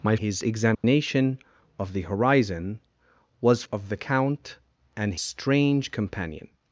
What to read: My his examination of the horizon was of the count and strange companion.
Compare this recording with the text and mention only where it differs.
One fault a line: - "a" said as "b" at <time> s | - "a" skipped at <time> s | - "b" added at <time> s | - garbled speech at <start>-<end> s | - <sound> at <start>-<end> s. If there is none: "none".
- dropout at 0.7-0.8 s